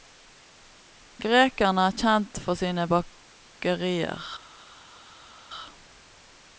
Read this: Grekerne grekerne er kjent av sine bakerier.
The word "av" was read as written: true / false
false